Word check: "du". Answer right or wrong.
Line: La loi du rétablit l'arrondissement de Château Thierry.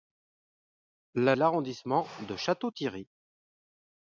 wrong